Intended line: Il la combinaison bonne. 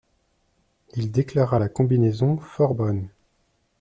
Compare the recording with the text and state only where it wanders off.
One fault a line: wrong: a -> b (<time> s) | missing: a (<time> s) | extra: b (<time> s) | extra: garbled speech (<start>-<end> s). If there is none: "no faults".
extra: déclara (1.1 s)
extra: fort (2.4 s)